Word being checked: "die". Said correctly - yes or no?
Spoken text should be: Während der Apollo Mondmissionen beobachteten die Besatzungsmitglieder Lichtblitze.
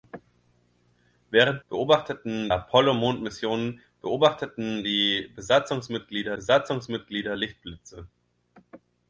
yes